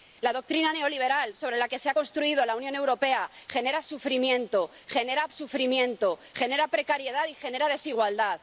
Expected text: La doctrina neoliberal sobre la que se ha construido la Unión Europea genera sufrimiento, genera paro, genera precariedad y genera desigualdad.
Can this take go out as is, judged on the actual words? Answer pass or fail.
fail